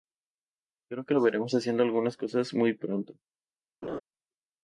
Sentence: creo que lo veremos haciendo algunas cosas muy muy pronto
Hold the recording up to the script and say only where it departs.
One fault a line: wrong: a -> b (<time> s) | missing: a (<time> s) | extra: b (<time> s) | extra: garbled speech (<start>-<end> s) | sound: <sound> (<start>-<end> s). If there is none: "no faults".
missing: muy (2.7 s)
sound: laugh (3.8-4.0 s)